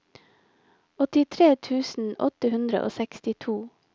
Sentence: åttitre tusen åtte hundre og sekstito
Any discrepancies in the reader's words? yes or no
no